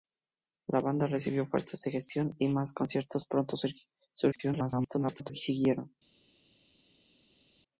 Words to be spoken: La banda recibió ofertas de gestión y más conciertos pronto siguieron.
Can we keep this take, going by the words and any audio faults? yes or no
no